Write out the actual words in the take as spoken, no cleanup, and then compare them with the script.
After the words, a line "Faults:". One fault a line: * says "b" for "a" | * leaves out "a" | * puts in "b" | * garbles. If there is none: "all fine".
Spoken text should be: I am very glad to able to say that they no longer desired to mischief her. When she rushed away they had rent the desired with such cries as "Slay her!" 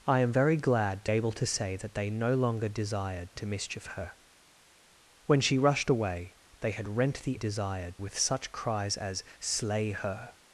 I am very glad to able to say that they no longer desired to mischief her. When she rushed away they had rent the desired with such cries as "Slay her!"
Faults:
all fine